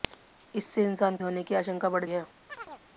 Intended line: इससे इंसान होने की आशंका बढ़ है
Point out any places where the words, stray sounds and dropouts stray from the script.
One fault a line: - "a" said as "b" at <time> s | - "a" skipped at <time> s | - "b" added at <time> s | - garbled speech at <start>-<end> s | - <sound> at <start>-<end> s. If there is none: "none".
- chirp at 2.5-2.8 s